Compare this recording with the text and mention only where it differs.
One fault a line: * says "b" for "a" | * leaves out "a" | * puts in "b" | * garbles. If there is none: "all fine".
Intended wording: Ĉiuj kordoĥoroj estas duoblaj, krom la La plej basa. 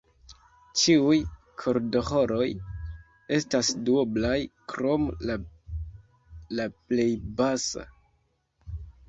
all fine